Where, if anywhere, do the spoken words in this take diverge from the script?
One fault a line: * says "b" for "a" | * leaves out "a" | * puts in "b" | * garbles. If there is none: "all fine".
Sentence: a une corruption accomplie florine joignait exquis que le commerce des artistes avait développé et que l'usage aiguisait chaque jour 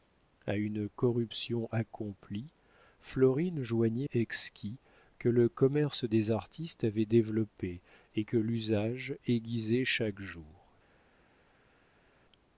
all fine